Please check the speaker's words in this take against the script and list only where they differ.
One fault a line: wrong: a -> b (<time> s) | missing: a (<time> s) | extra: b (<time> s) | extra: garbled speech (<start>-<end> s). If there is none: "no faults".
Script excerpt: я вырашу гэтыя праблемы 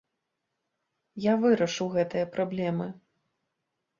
no faults